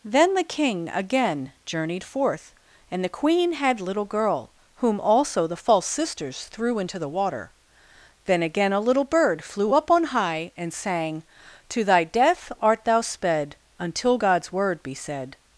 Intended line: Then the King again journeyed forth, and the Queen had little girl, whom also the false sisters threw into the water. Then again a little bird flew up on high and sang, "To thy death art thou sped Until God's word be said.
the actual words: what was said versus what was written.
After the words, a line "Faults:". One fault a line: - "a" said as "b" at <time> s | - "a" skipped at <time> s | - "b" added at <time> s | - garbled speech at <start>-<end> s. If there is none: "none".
Then the King again journeyed forth, and the Queen had little girl, whom also the false sisters threw into the water. Then again a little bird flew up on high and sang, "To thy death art thou sped Until God's word be said.
Faults:
none